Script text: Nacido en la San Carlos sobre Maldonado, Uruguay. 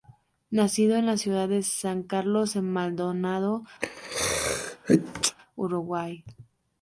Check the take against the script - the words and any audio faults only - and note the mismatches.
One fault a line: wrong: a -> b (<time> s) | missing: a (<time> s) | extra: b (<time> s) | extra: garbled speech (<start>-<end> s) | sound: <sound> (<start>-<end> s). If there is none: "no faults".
extra: ciudad de (1.1 s)
wrong: sobre -> en (2.5 s)
sound: sneeze (3.8-5.4 s)